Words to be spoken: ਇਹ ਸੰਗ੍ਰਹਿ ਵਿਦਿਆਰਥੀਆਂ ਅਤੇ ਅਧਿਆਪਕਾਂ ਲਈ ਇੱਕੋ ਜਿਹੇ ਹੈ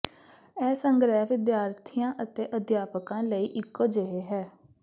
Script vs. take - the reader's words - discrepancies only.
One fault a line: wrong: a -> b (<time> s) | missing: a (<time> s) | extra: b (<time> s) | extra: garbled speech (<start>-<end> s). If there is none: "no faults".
no faults